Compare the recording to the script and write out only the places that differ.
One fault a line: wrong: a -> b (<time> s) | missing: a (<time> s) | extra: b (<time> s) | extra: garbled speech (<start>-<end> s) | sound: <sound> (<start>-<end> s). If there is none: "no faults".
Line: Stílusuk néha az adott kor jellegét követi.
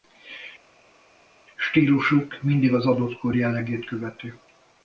wrong: néha -> mindig (2.4 s)